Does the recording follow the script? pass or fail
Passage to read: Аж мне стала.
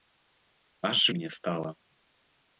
pass